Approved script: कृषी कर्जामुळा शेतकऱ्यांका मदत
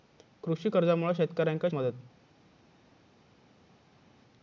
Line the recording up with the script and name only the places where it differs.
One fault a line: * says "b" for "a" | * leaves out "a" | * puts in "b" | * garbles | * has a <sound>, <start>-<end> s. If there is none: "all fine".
all fine